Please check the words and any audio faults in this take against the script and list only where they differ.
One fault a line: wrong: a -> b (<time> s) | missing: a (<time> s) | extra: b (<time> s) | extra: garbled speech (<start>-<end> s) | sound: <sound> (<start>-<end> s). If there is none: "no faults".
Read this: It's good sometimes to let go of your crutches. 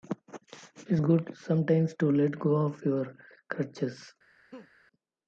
sound: laugh (4.5-4.7 s)